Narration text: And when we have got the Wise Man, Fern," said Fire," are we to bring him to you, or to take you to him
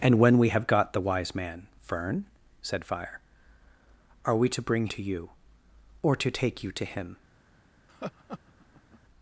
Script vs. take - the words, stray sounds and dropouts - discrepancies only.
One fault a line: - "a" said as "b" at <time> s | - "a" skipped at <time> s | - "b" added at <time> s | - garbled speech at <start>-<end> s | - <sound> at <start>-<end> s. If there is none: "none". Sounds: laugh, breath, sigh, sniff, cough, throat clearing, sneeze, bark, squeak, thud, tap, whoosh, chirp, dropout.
- "him" skipped at 4.9 s
- laugh at 7.9-9.0 s